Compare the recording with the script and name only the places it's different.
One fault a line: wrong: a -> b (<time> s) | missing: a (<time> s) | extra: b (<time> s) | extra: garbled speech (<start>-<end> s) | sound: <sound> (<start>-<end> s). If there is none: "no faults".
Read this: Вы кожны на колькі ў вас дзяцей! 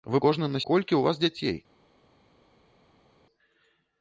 no faults